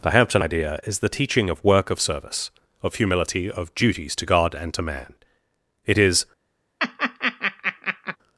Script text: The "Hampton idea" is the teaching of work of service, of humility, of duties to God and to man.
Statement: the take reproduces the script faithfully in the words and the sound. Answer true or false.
false